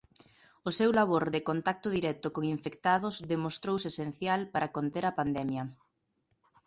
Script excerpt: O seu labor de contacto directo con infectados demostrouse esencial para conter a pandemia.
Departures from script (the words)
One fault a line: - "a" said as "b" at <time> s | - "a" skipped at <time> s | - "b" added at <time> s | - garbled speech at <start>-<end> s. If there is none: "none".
none